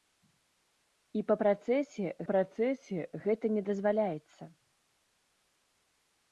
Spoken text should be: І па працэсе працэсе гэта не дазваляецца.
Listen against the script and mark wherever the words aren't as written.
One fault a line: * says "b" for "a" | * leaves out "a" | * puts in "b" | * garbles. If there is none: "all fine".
all fine